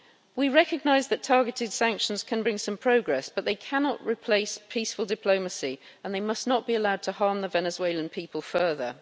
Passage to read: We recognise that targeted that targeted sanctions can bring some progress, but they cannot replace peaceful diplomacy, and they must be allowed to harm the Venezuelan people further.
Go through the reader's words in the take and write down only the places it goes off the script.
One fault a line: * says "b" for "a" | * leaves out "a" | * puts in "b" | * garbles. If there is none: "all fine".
* leaves out "that targeted"
* puts in "not"